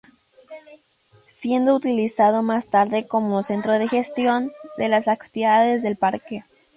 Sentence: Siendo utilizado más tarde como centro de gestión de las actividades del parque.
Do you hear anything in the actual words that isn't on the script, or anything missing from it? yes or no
no